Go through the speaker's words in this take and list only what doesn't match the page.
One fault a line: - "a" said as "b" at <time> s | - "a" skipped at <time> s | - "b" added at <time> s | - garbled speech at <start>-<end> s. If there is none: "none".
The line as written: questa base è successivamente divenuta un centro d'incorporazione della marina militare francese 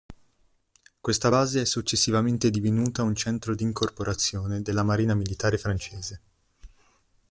none